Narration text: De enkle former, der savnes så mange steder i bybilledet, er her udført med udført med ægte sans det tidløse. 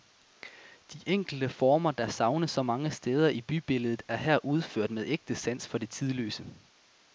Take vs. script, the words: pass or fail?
fail